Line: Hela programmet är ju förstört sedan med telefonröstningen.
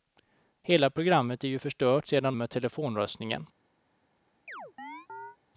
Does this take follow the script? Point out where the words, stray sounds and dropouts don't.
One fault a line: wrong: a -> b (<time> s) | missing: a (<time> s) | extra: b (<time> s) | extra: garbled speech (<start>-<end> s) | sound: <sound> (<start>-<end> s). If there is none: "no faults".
sound: chirp (4.5-5.4 s)